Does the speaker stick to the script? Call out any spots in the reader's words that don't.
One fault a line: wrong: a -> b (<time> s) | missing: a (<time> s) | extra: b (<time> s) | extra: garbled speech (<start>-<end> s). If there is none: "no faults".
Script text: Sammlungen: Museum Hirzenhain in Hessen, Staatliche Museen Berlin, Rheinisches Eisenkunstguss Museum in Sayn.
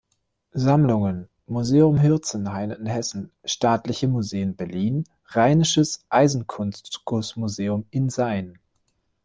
no faults